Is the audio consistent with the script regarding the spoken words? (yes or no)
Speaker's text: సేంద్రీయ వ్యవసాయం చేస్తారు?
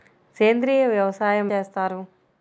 yes